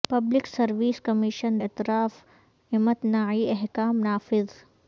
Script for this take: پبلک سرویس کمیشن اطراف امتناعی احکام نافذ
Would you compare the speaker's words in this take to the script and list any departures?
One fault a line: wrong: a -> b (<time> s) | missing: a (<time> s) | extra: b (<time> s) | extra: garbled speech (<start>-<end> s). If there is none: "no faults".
no faults